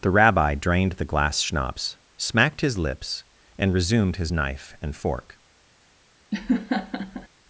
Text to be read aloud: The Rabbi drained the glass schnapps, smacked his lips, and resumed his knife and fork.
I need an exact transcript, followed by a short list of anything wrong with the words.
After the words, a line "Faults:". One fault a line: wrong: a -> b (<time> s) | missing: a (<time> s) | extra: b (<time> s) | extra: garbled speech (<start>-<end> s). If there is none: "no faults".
The Rabbi drained the glass schnapps, smacked his lips, and resumed his knife and fork.
Faults:
no faults